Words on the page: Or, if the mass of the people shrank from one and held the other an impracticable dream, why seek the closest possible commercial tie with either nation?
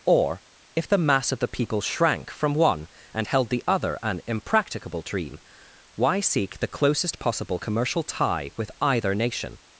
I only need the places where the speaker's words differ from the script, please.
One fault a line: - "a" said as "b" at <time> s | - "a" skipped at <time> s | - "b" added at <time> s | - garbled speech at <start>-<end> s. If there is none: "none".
none